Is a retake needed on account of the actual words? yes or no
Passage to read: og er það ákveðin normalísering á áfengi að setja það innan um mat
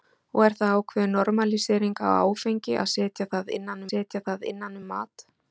yes